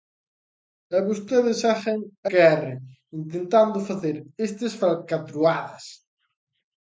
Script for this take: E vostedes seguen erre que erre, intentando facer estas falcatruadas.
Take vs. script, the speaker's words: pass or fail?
fail